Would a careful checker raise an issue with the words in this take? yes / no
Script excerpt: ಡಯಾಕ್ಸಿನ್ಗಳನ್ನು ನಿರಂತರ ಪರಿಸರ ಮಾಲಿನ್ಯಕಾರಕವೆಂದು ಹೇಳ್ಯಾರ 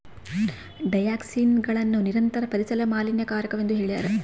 no